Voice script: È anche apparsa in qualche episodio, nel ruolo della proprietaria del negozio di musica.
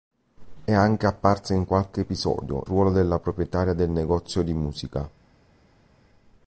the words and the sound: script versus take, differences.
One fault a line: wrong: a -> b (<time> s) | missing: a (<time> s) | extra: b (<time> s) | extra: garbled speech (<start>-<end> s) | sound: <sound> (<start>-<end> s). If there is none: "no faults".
missing: nel (2.6 s)